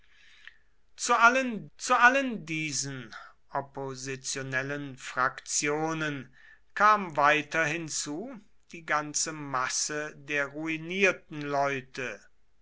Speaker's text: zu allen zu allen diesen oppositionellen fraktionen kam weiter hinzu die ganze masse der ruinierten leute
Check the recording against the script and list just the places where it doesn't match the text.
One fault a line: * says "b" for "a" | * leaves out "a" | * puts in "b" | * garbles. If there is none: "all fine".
all fine